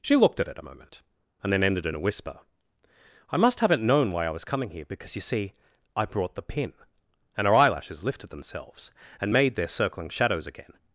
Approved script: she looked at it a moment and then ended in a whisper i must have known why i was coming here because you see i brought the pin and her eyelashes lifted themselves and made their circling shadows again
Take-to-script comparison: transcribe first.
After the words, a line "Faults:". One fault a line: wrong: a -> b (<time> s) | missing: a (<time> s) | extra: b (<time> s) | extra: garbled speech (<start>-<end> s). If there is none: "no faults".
she looked at it a moment and then ended in a whisper i must haven't known why i was coming here because you see i brought the pin and her eyelashes lifted themselves and made their circling shadows again
Faults:
wrong: have -> haven't (3.6 s)